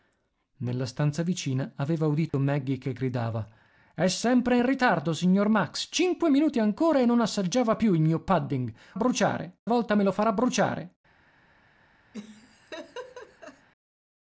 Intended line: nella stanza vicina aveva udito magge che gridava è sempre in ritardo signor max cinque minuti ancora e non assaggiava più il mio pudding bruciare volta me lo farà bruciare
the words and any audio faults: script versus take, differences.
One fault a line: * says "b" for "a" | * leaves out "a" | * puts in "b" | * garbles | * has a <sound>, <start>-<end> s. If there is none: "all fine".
* has a dropout, 2.3-2.3 s
* has a laugh, 12.1-13.7 s